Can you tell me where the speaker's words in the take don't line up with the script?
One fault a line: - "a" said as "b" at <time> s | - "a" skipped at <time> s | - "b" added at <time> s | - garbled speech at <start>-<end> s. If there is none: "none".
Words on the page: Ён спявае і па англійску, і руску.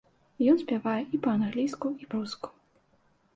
none